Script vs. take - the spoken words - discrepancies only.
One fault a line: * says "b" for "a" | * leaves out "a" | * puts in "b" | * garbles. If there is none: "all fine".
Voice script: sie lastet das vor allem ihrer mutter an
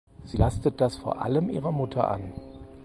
all fine